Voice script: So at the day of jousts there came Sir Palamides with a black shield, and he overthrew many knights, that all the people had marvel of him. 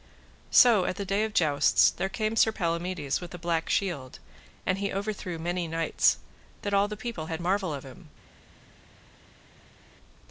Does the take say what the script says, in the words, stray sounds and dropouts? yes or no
yes